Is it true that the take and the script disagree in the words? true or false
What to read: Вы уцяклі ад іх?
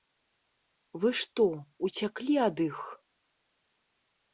true